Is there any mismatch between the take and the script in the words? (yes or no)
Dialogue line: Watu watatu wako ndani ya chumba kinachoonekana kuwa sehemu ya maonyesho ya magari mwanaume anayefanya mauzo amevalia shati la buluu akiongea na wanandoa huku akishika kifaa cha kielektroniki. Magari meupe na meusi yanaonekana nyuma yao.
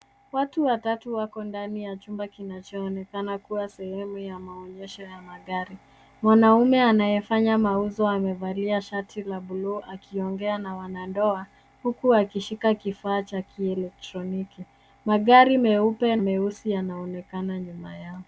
yes